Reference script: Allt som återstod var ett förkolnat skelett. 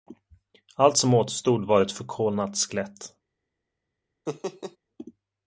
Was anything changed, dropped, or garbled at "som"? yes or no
no